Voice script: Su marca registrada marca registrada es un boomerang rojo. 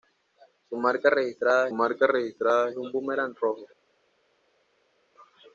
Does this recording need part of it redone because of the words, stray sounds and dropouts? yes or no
no